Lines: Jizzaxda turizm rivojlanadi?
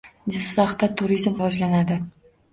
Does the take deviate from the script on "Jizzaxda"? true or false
false